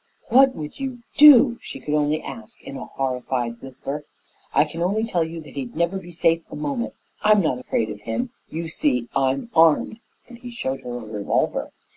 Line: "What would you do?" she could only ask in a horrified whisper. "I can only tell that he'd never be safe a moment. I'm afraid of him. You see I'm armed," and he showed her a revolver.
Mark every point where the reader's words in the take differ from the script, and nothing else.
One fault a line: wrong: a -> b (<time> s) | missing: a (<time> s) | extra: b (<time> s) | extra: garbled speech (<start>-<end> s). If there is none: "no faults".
extra: you (5.2 s)
extra: not (7.4 s)